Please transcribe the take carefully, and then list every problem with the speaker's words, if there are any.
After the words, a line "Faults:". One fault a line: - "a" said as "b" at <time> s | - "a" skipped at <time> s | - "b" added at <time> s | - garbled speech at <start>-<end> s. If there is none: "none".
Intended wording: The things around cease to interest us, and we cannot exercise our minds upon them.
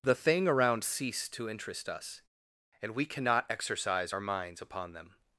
The thing around cease to interest us, and we cannot exercise our minds upon them.
Faults:
- "things" said as "thing" at 0.1 s